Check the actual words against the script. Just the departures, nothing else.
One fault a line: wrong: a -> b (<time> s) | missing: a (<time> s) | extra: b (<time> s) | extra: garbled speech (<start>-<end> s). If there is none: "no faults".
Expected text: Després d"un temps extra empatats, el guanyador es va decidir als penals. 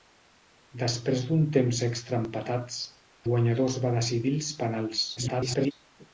missing: el (2.8 s)
extra: garbled speech (5.2-5.7 s)